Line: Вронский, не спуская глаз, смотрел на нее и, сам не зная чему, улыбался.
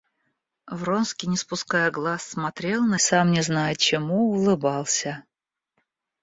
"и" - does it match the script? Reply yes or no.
no